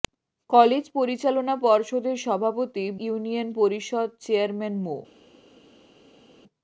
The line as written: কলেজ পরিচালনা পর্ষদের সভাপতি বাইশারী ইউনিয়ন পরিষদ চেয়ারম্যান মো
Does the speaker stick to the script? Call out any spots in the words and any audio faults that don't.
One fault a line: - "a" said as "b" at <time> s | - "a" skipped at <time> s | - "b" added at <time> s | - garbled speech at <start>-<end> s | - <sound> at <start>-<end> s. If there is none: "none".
- "বাইশারী" skipped at 2.9 s